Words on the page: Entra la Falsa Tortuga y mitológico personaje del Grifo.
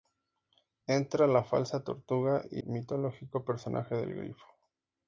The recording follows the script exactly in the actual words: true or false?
true